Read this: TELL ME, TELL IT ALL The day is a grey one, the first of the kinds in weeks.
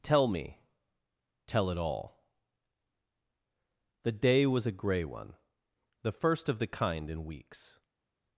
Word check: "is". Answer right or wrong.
wrong